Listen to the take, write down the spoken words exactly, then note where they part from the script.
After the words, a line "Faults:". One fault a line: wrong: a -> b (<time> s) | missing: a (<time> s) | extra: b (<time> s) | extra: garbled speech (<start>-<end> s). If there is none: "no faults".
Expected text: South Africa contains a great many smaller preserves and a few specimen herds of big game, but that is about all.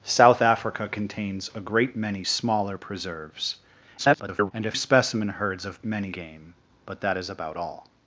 South Africa contains a great many smaller preserves [garbled] and a specimen herds of many game, but that is about all.
Faults:
extra: garbled speech (4.0-4.5 s)
missing: few (4.7 s)
wrong: big -> many (5.8 s)